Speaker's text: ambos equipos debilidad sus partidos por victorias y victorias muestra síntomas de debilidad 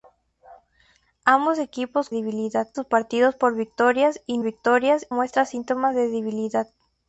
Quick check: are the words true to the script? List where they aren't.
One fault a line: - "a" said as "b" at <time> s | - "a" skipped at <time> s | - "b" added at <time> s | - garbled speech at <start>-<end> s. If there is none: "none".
none